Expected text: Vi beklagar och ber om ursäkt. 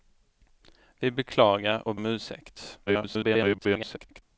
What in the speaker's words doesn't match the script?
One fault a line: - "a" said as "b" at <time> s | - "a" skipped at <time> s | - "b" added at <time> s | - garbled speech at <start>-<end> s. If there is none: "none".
- "ber" skipped at 1.9 s
- garbled speech at 2.9-4.2 s